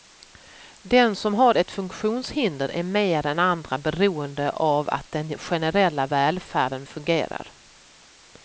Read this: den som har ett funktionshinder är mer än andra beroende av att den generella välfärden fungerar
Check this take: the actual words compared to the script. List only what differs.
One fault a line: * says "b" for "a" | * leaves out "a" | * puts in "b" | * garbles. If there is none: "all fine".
all fine